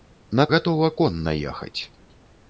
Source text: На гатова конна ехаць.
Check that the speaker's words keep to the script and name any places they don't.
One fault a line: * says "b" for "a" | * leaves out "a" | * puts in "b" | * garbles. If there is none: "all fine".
all fine